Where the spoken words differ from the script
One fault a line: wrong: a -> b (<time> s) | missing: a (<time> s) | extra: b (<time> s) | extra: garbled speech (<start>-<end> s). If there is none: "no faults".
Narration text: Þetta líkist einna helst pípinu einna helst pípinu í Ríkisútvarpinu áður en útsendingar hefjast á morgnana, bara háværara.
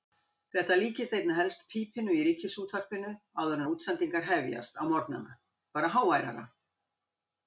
missing: einna helst pípinu (2.1 s)